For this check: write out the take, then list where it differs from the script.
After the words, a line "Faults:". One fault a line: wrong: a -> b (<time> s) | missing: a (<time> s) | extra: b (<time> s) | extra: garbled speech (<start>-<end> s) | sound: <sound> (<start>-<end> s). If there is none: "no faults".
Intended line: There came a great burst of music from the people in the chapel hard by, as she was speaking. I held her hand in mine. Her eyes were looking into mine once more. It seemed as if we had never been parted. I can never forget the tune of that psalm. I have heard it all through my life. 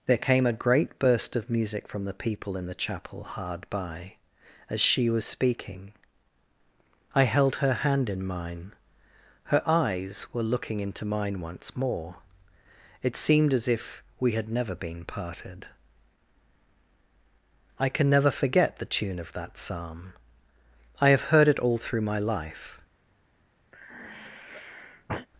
There came a great burst of music from the people in the chapel hard by, as she was speaking. I held her hand in mine. Her eyes were looking into mine once more. It seemed as if we had never been parted. I can never forget the tune of that psalm. I have heard it all through my life.
Faults:
sound: sigh (23.7-25.3 s)